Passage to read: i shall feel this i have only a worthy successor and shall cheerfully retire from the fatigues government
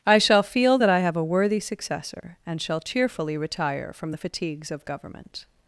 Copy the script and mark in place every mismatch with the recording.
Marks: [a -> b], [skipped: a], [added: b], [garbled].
i shall feel [this -> that] i have [skipped: only] a worthy successor and shall cheerfully retire from the fatigues [added: of] government